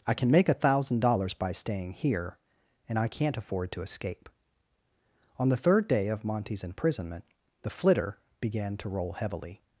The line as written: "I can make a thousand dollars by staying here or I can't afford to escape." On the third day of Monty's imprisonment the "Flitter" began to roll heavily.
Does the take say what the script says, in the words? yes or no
no